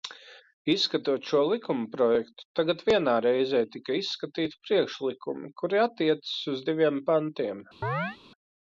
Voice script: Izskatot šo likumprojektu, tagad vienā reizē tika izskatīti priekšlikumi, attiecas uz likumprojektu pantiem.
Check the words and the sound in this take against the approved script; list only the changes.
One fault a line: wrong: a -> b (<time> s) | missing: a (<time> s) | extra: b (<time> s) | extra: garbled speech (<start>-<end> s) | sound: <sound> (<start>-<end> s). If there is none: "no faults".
extra: kuri (5.6 s)
wrong: likumprojektu -> diviem (6.7 s)
sound: chirp (7.8-8.2 s)